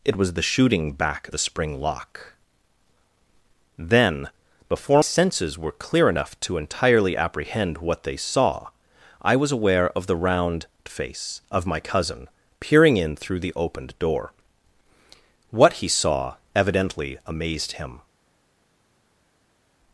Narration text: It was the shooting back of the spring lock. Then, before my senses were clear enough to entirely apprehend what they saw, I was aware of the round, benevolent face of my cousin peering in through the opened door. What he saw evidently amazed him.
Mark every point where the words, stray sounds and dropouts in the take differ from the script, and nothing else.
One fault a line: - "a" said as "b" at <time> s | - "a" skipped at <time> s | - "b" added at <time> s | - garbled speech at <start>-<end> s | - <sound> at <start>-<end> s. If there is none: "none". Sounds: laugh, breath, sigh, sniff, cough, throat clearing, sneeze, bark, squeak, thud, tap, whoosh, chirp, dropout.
- "of" skipped at 1.3 s
- "my" skipped at 5.0 s
- "benevolent" skipped at 10.7 s